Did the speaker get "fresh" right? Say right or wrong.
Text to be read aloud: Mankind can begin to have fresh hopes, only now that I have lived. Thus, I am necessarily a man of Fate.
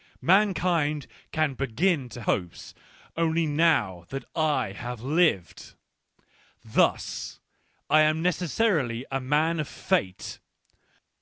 wrong